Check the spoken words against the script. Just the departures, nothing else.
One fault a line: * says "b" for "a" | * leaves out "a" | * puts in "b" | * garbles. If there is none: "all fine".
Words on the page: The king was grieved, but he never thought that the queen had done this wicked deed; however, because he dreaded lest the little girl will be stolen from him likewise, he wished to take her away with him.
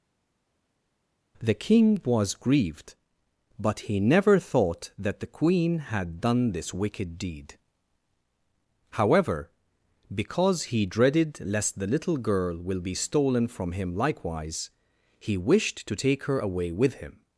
all fine